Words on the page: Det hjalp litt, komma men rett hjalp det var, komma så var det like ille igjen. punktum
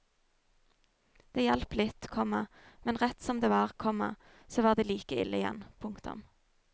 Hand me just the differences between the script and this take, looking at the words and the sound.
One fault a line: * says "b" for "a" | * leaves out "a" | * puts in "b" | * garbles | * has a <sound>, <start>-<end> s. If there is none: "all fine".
* says "som" for "hjalp"